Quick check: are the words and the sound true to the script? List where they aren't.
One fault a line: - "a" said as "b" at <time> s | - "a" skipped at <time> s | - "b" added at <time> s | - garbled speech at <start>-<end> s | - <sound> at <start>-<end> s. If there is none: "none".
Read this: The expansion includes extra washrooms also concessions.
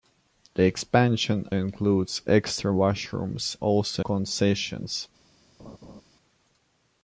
- laugh at 5.6-6.0 s